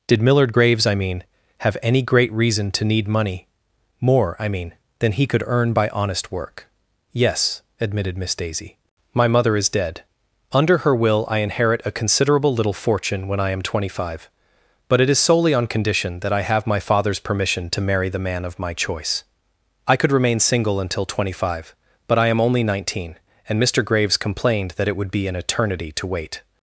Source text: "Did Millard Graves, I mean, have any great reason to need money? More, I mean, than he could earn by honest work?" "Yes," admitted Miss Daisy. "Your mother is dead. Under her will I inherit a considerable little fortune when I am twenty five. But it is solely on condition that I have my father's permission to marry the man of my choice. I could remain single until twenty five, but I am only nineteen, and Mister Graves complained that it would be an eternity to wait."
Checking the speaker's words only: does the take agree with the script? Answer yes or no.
no